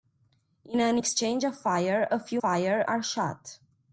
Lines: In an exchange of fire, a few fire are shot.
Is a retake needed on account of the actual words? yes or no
no